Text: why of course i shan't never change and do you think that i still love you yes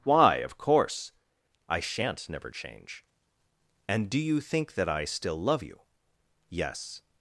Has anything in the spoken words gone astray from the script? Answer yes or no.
no